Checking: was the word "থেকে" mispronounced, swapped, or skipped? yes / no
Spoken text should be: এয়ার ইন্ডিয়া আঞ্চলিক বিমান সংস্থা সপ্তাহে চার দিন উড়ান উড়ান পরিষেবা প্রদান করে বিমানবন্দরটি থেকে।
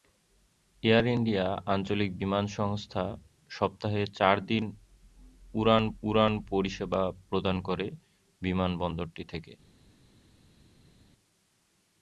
no